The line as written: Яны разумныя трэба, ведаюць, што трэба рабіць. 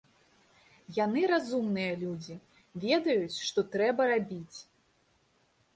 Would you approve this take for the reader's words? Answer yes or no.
no